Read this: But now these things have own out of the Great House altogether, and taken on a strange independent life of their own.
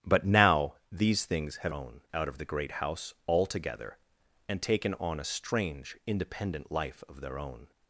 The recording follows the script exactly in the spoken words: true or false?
true